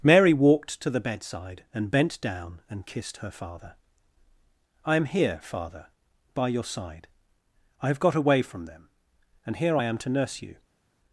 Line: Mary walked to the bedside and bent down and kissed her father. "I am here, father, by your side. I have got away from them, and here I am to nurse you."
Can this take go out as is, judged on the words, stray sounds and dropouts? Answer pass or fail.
pass